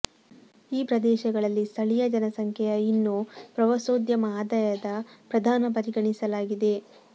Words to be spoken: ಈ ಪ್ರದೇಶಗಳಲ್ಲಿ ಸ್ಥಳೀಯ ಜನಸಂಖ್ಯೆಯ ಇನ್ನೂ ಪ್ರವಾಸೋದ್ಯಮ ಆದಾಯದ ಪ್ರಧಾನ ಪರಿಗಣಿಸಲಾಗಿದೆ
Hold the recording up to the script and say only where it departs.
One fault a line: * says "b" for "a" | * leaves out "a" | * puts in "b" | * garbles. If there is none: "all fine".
all fine